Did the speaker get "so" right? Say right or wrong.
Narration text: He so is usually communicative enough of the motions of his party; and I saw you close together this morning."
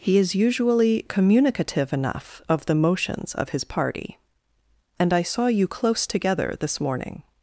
wrong